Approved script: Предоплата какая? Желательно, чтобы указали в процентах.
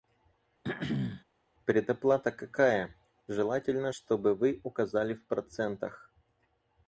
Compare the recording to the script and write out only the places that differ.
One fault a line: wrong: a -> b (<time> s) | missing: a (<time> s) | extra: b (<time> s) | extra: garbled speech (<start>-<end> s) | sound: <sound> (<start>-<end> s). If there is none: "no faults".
sound: throat clearing (0.6-1.2 s)
extra: вы (4.3 s)